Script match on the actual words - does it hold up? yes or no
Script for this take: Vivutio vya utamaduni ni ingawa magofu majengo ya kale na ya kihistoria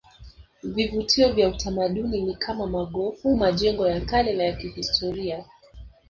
no